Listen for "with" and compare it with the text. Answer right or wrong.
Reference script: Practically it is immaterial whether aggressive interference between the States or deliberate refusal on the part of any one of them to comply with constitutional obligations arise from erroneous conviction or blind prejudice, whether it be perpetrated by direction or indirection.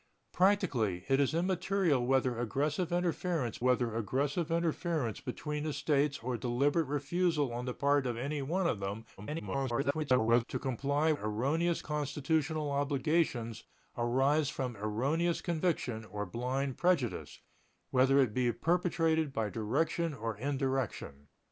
wrong